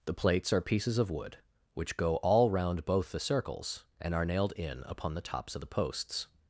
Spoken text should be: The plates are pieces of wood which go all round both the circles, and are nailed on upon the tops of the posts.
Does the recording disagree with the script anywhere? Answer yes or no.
yes